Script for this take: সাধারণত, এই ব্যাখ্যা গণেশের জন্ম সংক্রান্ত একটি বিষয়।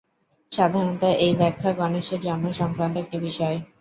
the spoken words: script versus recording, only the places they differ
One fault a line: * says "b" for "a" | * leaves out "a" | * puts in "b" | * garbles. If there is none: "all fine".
all fine